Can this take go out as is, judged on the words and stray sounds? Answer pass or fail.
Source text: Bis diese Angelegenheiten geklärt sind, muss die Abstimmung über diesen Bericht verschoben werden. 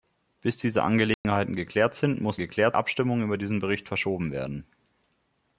fail